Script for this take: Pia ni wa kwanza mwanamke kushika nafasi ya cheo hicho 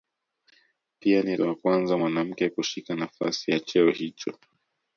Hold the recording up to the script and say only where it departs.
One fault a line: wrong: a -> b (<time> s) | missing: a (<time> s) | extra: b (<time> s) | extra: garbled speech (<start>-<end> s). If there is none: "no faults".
no faults